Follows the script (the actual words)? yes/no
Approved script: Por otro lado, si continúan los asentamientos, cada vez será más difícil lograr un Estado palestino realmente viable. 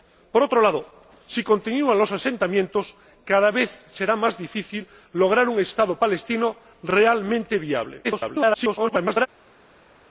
no